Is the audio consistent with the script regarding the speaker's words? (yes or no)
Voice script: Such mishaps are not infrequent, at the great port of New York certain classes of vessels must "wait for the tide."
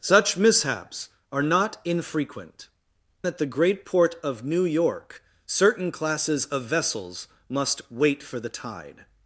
yes